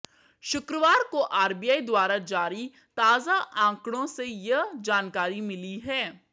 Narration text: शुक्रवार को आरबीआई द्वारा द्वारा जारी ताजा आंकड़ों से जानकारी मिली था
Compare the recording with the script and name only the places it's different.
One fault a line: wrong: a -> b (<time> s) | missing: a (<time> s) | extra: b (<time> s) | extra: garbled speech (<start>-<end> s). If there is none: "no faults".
missing: द्वारा (2.2 s)
extra: यह (4.2 s)
wrong: था -> है (5.8 s)